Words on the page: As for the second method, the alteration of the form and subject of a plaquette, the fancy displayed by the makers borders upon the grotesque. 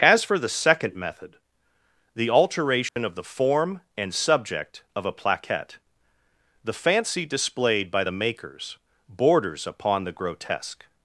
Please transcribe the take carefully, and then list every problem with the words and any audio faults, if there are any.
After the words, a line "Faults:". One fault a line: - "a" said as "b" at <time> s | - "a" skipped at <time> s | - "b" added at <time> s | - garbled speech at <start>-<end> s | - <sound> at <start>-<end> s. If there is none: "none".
As for the second method, the alteration of the form and subject of a plaquette, the fancy displayed by the makers borders upon the grotesque.
Faults:
- dropout at 2.9-3.0 s